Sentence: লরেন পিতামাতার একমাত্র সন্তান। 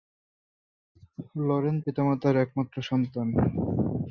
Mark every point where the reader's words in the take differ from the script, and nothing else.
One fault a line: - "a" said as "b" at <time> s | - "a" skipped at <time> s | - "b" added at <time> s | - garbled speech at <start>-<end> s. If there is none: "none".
none